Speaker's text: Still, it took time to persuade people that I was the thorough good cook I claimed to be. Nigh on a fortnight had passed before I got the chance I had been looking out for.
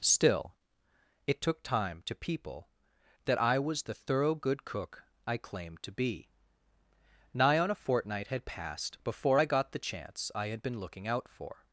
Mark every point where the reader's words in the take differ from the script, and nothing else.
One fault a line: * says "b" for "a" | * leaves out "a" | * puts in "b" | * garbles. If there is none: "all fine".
* leaves out "persuade"